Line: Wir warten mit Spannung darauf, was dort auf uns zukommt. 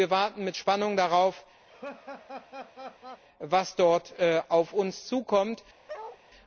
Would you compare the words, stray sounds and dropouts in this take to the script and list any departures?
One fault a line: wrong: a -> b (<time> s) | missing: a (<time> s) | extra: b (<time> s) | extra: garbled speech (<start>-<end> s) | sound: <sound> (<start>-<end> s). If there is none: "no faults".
sound: laugh (1.7-3.2 s)
sound: bark (5.9-6.2 s)